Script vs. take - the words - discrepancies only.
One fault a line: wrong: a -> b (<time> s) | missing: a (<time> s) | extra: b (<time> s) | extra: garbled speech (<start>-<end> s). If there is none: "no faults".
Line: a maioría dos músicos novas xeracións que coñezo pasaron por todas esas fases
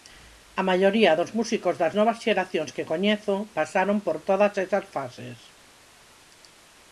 extra: das (1.8 s)